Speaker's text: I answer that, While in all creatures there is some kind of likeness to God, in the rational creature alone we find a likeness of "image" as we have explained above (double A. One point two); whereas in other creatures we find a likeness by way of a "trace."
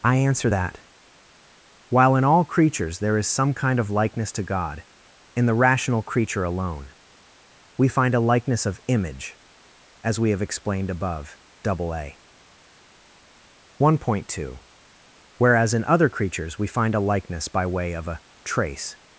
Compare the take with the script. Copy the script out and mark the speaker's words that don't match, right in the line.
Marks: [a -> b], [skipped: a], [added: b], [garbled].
I answer that, While in all creatures there is some kind of likeness to God, in the rational creature alone we find a likeness of "image" as we have explained above (double A. One point two); whereas in other creatures we find a likeness by way of a "trace."